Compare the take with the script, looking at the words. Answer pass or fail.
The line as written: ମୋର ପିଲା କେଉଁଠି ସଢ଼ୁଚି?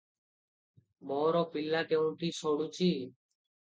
pass